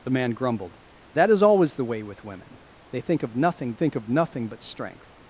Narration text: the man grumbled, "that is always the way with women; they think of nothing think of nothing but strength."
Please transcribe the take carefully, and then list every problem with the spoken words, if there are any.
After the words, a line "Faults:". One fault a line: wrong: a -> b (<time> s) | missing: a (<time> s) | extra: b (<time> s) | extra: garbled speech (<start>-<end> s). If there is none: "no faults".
the man grumbled, "that is always the way with women; they think of nothing think of nothing but strength."
Faults:
no faults